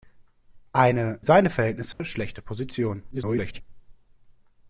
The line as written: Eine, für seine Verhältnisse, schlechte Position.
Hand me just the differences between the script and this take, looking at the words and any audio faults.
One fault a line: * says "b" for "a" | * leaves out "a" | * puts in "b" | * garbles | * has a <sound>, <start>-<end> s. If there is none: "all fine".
* leaves out "für"
* has a dropout, 1.9-2.0 s
* garbles